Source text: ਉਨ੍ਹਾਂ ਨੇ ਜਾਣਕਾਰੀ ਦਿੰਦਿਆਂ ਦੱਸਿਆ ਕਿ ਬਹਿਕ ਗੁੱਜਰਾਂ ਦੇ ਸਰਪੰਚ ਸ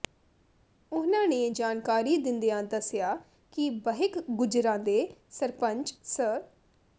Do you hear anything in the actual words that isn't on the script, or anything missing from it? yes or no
no